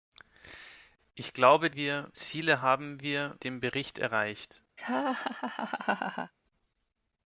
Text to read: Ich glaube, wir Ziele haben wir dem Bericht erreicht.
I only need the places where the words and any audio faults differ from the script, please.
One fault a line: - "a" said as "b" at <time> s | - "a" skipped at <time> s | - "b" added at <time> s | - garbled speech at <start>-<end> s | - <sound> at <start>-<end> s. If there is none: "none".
- laugh at 4.8-6.3 s